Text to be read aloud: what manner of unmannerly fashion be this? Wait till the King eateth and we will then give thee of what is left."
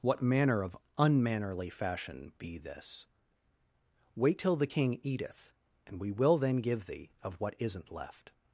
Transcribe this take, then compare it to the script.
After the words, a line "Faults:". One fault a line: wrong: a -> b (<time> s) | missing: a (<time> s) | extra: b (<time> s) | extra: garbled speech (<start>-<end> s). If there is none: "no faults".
what manner of unmannerly fashion be this? Wait till the King eateth and we will then give thee of what isn't left."
Faults:
wrong: is -> isn't (7.6 s)